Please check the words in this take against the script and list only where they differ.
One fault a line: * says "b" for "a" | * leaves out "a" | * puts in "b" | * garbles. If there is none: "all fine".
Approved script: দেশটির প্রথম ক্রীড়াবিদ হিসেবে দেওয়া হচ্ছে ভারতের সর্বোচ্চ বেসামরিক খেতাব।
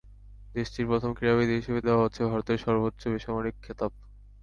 all fine